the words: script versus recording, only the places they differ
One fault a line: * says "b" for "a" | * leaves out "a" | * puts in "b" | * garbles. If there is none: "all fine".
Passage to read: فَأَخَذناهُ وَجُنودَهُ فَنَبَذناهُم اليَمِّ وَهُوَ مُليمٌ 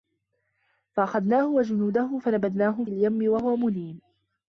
all fine